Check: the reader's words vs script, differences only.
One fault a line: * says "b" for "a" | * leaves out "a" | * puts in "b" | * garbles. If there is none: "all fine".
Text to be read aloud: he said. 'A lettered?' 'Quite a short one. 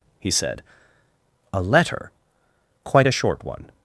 * says "letter" for "lettered"